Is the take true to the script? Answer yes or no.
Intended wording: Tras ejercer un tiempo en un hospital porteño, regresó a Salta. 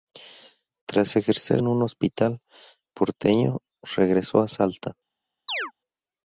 no